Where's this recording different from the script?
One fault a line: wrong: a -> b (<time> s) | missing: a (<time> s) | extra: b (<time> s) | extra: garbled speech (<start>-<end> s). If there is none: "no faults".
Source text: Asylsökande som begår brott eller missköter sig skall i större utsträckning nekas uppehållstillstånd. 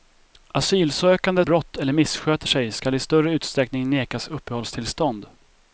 missing: som begår (1.4 s)